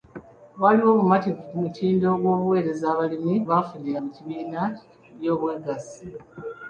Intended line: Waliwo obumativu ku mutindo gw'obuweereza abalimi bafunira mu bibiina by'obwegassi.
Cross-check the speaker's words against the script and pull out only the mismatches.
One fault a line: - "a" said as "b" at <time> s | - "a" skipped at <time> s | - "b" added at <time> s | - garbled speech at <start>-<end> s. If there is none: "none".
none